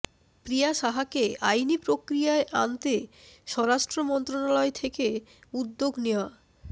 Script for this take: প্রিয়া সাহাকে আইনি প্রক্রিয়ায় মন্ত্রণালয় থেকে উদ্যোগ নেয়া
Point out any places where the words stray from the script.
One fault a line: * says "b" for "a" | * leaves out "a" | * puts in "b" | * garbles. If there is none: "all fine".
* puts in "আনতে স্বরাষ্ট্র"